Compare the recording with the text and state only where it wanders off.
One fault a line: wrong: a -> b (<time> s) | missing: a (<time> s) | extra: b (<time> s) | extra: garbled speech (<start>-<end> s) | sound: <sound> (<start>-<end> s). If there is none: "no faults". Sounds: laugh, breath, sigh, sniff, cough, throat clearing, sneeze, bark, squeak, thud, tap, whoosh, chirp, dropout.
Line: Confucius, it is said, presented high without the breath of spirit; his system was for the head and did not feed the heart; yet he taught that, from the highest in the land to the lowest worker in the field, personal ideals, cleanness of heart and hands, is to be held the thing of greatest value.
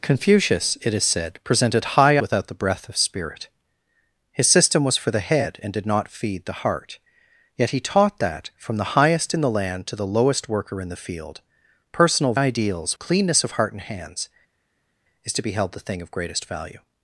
no faults